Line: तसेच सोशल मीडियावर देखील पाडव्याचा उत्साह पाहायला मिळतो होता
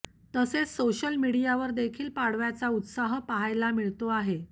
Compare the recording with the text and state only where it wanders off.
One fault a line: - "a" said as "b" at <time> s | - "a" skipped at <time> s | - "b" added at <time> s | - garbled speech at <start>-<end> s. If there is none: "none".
- "होता" said as "आहे" at 4.1 s